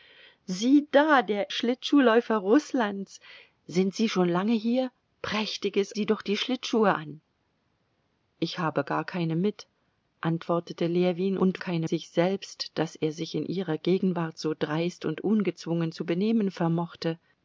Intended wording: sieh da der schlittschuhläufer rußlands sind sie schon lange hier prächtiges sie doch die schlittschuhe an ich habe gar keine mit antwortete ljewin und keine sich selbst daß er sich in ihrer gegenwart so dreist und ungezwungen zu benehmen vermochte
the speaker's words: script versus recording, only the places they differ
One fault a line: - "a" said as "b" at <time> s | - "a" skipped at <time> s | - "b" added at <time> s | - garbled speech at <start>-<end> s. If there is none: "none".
none